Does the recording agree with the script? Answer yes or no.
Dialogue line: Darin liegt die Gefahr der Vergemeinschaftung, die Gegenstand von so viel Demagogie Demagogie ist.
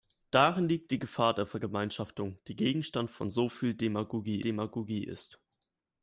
yes